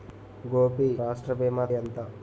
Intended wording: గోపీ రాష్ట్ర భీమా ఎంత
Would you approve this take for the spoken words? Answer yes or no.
yes